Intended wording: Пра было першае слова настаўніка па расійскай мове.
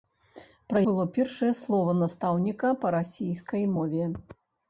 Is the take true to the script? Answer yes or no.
yes